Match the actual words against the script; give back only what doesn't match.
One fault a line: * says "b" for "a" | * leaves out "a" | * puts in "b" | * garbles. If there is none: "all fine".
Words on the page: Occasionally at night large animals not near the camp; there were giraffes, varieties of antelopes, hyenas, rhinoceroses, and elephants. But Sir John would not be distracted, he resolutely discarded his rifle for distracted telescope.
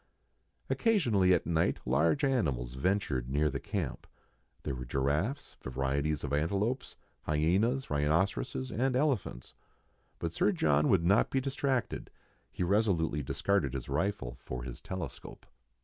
* says "ventured" for "not"
* says "his" for "distracted"